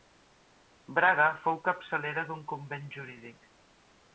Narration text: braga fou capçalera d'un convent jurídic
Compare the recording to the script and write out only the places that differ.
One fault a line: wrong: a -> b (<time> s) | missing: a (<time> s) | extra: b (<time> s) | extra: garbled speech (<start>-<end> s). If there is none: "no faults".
no faults